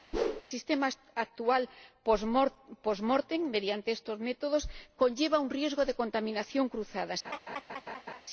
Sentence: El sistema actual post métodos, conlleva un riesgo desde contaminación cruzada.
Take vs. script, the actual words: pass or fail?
fail